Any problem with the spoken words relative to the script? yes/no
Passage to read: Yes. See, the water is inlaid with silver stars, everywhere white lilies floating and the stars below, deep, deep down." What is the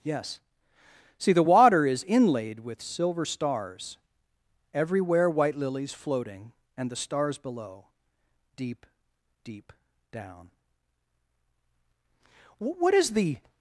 no